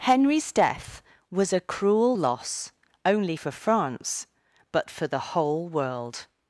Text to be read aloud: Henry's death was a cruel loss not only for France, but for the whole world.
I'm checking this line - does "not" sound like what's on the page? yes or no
no